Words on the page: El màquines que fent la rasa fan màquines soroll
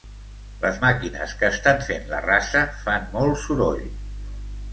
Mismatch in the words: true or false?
true